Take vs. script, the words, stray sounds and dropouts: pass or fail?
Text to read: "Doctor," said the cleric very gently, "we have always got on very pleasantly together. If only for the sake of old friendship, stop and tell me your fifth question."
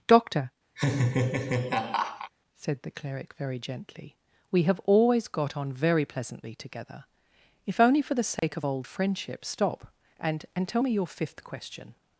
fail